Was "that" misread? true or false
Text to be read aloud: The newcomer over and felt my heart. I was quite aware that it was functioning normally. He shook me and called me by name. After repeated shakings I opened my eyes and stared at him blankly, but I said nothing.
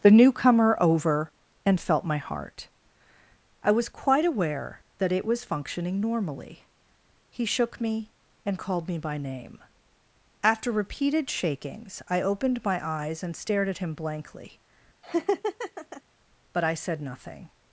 false